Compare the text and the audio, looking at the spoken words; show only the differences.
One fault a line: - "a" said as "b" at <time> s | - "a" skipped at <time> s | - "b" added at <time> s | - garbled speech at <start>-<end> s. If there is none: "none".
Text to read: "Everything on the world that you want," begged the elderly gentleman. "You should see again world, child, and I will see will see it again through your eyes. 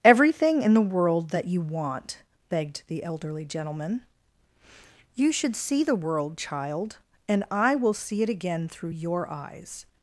- "on" said as "in" at 0.6 s
- "again" said as "the" at 5.8 s
- "will see" skipped at 8.2 s